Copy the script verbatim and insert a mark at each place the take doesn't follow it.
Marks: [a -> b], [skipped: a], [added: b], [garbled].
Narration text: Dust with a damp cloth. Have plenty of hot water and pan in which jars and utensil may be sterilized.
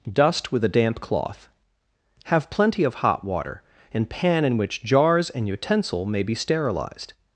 Dust with a damp cloth. Have plenty of hot water and pan in which jars and utensil may be sterilized.